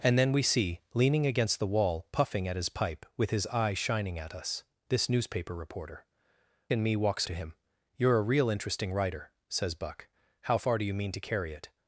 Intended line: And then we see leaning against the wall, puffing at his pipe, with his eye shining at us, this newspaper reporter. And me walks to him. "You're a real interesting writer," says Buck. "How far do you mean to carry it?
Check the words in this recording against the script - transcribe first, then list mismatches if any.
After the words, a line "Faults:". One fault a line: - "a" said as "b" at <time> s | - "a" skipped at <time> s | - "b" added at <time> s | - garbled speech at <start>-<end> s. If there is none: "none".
And then we see leaning against the wall, puffing at his pipe, with his eye shining at us, this newspaper reporter. And me walks to him. "You're a real interesting writer," says Buck. "How far do you mean to carry it?
Faults:
none